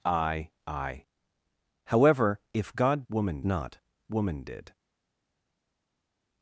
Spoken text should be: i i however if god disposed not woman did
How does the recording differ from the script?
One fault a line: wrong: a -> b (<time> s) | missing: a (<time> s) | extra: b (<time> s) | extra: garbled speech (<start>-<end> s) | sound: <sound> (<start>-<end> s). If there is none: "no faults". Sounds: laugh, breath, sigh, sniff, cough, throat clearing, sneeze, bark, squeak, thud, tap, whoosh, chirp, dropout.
wrong: disposed -> woman (3.1 s)